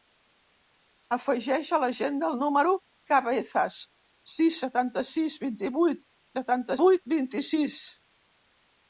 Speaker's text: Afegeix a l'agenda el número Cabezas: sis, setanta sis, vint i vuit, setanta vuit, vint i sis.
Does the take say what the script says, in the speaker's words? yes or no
yes